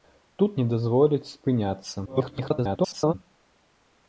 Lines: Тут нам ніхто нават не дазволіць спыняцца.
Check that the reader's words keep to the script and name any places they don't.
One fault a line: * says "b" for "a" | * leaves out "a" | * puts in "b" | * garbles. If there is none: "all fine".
* leaves out "нам ніхто нават"
* garbles